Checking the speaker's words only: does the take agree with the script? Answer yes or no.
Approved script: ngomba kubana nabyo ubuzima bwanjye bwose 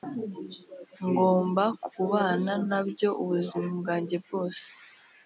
yes